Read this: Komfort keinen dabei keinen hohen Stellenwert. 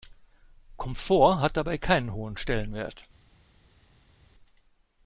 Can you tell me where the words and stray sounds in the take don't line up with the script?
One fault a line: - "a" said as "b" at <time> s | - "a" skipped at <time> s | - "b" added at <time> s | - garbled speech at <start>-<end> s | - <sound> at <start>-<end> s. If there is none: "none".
- "keinen" said as "hat" at 1.4 s